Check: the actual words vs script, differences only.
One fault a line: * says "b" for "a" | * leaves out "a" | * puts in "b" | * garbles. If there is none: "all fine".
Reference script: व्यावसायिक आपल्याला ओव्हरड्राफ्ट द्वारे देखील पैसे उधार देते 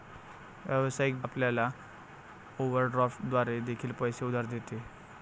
all fine